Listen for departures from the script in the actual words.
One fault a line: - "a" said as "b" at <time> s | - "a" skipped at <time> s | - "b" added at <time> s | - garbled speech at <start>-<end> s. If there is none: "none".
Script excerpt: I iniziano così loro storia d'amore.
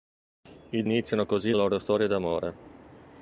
none